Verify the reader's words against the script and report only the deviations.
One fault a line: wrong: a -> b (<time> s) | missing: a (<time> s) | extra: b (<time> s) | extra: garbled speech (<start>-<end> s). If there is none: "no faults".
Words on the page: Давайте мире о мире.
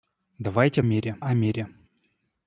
no faults